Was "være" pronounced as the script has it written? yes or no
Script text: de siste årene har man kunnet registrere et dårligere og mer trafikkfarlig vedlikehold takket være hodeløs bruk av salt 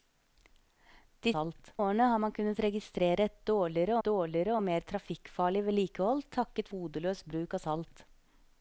no